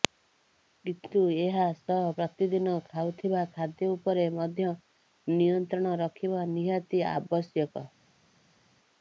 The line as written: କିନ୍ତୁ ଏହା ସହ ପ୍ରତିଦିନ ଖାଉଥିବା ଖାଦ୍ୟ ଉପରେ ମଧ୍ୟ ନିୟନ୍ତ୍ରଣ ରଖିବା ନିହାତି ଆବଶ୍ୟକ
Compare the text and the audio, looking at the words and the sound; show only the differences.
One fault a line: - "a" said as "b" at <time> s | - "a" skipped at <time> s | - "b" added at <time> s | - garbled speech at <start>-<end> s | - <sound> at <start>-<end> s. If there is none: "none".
none